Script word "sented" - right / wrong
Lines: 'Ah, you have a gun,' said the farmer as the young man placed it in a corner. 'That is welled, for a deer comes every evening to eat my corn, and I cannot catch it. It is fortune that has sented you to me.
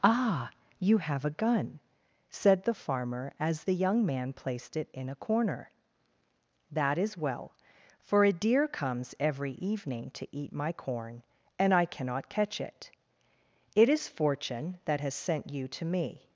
wrong